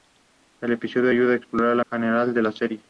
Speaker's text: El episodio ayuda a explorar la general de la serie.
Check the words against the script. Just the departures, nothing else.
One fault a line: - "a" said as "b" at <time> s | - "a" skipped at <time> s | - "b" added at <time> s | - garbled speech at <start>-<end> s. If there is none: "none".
none